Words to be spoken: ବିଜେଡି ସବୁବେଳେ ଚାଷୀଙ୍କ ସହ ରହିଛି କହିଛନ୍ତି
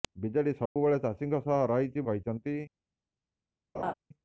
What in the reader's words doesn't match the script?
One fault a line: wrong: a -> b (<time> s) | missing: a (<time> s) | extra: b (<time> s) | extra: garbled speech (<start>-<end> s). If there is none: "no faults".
no faults